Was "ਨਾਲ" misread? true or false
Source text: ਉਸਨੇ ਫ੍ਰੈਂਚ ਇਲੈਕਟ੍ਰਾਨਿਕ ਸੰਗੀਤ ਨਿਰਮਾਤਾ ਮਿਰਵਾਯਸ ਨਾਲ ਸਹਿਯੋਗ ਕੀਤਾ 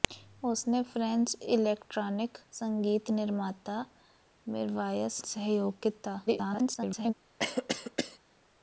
true